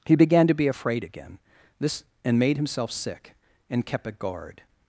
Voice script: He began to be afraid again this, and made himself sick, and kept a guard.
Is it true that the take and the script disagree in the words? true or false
false